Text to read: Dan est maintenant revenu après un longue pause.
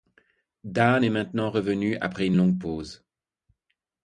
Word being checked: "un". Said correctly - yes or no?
no